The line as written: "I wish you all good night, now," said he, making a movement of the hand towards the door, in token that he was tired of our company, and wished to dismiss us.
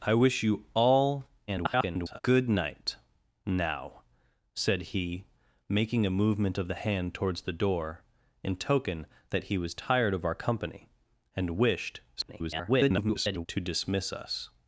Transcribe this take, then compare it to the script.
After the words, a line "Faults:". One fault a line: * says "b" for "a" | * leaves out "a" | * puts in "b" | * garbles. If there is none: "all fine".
"I wish you all [garbled] good night, now," said he, making a movement of the hand towards the door, in token that he was tired of our company, and wished [garbled] to dismiss us.
Faults:
* garbles
* garbles